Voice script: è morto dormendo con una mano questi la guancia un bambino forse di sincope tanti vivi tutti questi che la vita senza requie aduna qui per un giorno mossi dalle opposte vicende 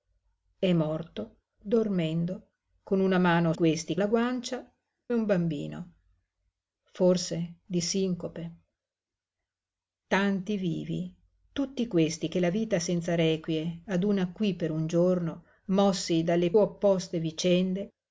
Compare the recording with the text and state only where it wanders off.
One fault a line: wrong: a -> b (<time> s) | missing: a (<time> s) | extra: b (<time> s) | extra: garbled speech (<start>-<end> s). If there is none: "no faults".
no faults